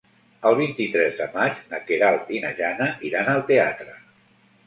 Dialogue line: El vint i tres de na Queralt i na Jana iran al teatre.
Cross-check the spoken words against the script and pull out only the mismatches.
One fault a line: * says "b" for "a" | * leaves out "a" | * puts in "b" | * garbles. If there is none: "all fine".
* puts in "maig"